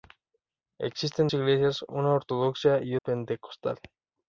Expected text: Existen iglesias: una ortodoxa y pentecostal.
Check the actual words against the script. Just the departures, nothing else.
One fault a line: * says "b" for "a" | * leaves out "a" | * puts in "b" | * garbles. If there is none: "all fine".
all fine